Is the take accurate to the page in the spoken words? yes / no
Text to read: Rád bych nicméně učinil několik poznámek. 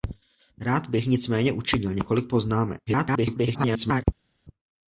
no